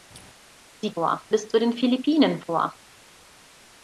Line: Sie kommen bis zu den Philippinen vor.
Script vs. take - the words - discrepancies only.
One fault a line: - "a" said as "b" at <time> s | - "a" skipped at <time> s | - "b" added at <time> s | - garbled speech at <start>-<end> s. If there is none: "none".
- "kommen" said as "vor" at 0.9 s